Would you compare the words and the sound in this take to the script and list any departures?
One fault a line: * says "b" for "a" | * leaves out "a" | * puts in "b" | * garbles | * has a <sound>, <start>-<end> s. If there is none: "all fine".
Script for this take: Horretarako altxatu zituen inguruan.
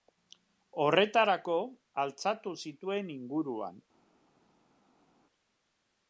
all fine